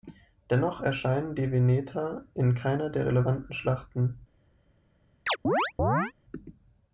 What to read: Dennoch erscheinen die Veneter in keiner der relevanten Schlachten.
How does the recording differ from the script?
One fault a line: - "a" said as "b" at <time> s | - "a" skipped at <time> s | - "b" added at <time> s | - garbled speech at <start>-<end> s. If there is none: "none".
none